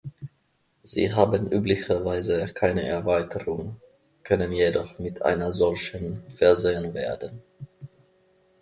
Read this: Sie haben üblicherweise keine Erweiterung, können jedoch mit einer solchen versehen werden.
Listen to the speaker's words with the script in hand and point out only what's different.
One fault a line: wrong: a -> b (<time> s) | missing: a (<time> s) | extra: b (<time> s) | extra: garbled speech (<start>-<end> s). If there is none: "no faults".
no faults